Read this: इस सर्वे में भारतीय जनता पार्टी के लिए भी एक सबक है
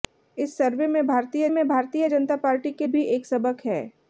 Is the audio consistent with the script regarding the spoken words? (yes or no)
no